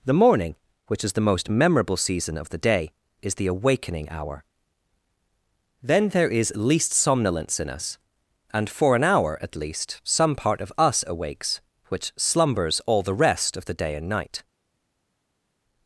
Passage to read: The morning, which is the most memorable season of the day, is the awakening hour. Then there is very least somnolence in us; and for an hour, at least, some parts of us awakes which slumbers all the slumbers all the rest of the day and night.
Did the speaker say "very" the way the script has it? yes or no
no